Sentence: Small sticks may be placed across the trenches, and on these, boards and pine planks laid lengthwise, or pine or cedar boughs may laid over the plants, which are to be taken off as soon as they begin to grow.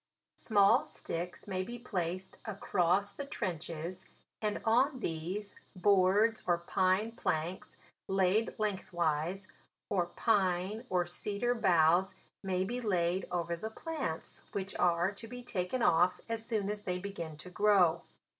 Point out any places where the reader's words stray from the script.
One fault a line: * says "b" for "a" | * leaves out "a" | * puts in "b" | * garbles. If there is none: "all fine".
* says "or" for "and"
* puts in "be"